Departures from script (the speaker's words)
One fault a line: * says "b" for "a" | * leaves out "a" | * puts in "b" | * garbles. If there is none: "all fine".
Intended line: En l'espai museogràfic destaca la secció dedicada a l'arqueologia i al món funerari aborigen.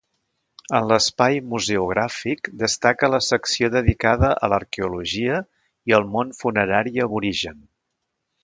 all fine